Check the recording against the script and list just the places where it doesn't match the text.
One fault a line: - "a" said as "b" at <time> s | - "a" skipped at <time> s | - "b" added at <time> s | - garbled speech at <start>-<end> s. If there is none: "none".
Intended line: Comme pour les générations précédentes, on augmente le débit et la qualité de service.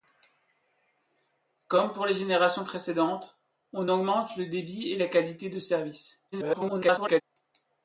- garbled speech at 6.3-7.2 s